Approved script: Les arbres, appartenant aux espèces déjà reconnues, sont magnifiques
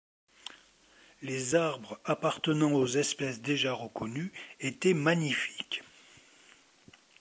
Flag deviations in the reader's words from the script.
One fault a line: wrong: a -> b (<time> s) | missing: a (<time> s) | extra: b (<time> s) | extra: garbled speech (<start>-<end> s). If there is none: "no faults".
wrong: sont -> étaient (4.6 s)